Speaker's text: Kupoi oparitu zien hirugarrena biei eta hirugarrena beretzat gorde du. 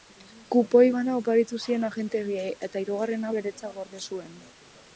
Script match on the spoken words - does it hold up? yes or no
no